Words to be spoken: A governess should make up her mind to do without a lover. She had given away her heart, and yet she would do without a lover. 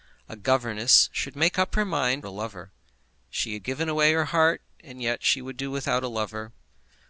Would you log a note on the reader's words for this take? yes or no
yes